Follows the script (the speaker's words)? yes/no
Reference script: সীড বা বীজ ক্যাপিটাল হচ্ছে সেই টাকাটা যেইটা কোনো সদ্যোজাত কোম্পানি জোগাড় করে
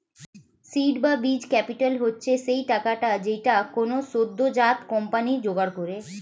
yes